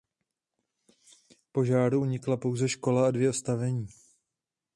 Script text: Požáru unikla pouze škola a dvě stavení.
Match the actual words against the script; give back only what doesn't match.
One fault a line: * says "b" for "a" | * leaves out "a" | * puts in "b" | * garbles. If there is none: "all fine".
all fine